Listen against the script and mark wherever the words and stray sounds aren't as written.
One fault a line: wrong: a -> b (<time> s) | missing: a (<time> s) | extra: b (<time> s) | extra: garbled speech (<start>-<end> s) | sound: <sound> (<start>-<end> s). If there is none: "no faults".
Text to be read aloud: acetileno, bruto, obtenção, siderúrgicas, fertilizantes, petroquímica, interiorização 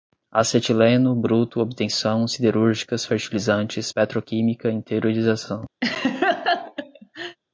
sound: laugh (5.8-7.4 s)